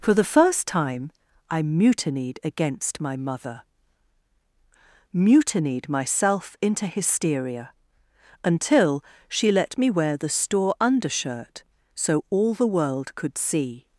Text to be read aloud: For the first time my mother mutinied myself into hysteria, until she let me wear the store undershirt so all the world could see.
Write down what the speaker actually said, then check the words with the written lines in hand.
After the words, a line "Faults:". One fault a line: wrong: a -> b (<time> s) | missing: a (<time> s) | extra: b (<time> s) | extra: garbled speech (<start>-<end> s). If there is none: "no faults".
For the first time I mutinied against my mother mutinied myself into hysteria, until she let me wear the store undershirt so all the world could see.
Faults:
extra: I mutinied against (1.5 s)